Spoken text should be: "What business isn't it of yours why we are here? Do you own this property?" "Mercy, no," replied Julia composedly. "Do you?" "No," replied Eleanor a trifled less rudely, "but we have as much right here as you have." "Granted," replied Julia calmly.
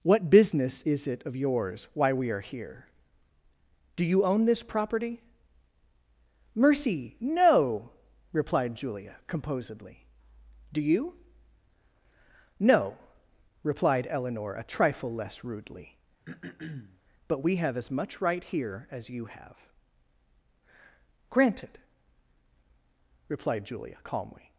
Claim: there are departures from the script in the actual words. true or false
true